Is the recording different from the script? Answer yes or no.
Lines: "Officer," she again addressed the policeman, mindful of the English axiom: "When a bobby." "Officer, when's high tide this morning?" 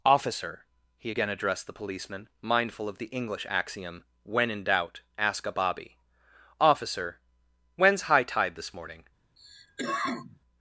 yes